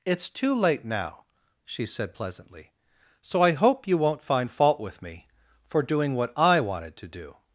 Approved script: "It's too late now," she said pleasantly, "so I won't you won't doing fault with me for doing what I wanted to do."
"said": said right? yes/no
yes